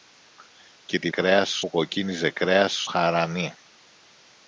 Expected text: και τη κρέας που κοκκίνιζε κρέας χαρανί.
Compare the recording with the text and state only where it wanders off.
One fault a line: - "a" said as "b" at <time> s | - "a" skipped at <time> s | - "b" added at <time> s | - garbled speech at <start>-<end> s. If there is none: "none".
none